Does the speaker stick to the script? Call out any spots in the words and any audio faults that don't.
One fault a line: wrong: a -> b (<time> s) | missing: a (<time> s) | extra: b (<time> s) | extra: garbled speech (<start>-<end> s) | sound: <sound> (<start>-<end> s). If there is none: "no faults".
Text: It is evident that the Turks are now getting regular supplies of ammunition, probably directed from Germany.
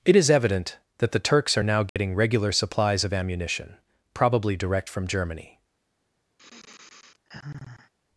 sound: dropout (1.9-2.0 s)
wrong: directed -> direct (4.6 s)
sound: sigh (6.4-7.9 s)